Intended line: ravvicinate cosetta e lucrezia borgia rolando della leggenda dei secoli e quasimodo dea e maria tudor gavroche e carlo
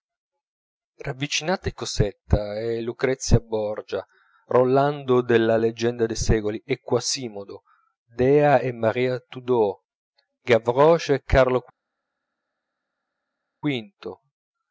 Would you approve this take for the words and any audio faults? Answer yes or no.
yes